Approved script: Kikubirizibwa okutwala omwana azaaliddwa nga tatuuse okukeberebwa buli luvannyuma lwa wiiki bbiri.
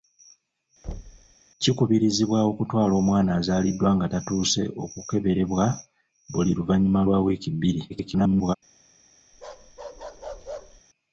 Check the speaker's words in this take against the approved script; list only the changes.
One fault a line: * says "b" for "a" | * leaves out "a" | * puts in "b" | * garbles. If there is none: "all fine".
* garbles